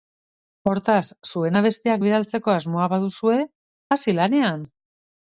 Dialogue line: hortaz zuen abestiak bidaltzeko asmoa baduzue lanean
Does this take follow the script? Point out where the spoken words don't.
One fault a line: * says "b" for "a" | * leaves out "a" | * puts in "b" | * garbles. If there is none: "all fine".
* puts in "hasi"